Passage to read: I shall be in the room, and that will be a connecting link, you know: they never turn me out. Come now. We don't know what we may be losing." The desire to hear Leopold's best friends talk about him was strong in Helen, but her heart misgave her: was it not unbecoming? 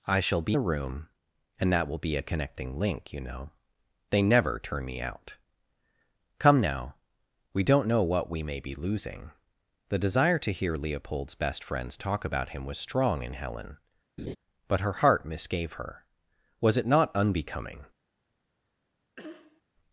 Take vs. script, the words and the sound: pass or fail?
fail